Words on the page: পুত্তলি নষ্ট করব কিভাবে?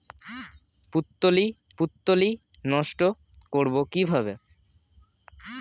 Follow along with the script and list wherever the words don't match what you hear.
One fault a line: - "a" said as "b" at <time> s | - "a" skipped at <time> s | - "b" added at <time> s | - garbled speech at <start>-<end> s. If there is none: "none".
- "পুত্তলি" added at 1.8 s